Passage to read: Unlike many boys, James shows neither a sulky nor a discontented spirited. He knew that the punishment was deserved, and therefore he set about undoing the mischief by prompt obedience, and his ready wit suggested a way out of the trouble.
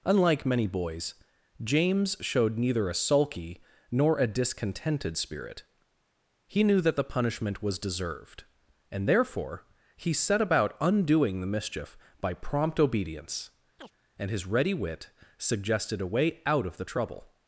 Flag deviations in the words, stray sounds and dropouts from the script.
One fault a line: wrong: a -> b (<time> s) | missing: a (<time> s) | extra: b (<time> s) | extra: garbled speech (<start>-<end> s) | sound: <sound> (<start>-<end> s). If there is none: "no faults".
wrong: shows -> showed (2.2 s)
wrong: spirited -> spirit (5.2 s)
sound: chirp (13.8-13.9 s)